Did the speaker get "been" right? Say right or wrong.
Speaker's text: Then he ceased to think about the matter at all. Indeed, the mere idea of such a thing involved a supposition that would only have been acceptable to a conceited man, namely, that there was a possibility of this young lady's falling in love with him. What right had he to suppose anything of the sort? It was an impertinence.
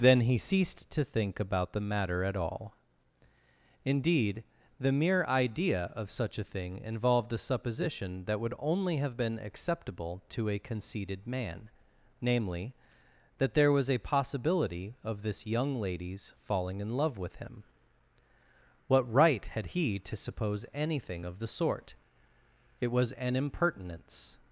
right